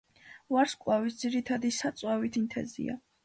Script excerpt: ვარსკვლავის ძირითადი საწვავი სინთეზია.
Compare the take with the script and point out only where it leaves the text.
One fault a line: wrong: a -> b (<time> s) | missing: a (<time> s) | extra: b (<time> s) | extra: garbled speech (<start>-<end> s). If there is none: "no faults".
no faults